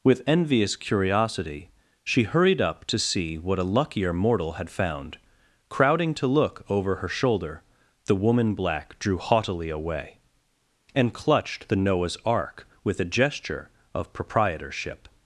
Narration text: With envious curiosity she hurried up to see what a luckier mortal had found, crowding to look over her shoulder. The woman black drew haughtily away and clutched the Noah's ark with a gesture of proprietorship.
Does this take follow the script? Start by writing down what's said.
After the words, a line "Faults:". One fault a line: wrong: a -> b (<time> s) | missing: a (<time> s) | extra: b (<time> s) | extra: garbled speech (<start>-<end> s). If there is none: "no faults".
With envious curiosity she hurried up to see what a luckier mortal had found, crowding to look over her shoulder. The woman black drew haughtily away and clutched the Noah's ark with a gesture of proprietorship.
Faults:
no faults